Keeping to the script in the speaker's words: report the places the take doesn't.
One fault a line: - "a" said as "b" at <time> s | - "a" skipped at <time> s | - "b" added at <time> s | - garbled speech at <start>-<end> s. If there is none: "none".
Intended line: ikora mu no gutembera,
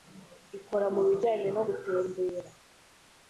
- "bijyanye" added at 1.1 s